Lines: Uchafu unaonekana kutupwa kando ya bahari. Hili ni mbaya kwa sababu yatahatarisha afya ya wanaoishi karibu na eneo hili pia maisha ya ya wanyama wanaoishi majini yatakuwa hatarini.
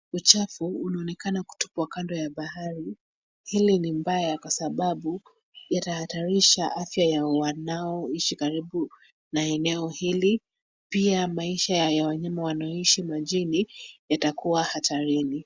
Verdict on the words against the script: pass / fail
fail